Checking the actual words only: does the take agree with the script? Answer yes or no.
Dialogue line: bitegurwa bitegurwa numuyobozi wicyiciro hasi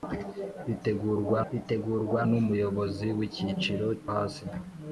yes